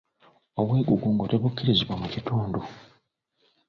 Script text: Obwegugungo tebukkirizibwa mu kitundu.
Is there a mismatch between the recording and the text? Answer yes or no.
no